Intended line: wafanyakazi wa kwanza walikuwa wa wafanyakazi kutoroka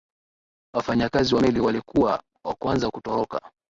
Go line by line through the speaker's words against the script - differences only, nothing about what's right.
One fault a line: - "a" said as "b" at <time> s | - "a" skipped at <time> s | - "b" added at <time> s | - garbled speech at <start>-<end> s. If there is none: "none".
- "kwanza" said as "meli" at 1.4 s
- "wafanyakazi" said as "kwanza" at 2.5 s